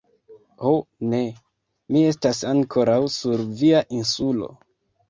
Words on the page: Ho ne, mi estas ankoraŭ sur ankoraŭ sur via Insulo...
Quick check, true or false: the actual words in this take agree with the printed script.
false